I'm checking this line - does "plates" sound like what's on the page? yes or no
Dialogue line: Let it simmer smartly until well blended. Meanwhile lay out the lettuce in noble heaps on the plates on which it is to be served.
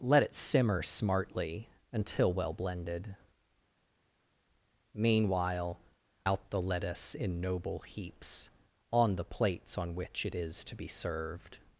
yes